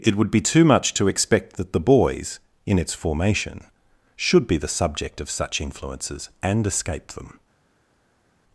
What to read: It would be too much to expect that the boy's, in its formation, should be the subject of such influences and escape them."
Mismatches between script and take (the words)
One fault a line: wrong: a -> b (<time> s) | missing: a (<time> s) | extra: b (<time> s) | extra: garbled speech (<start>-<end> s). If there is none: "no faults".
no faults